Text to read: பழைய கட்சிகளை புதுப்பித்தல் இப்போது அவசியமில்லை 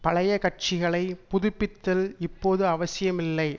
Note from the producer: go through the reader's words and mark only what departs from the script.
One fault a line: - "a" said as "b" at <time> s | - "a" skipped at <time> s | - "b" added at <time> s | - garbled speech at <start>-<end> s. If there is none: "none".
none